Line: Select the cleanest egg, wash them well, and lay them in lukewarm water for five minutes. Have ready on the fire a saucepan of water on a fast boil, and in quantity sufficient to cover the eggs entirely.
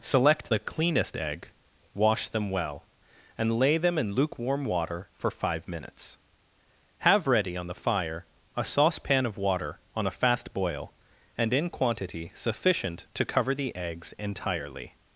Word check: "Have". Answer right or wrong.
right